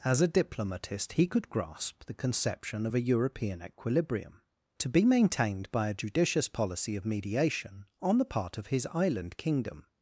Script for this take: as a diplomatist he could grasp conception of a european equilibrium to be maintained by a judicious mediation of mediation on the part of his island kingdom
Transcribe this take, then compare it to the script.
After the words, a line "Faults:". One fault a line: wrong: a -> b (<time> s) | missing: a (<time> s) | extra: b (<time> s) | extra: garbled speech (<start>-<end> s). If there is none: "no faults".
as a diplomatist he could grasp the conception of a european equilibrium to be maintained by a judicious policy of mediation on the part of his island kingdom
Faults:
extra: the (2.0 s)
wrong: mediation -> policy (6.5 s)